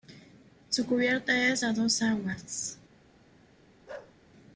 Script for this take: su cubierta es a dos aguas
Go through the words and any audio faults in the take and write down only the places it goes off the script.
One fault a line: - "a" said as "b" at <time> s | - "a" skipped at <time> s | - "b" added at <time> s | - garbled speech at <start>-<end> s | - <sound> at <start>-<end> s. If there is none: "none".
- bark at 3.9-4.2 s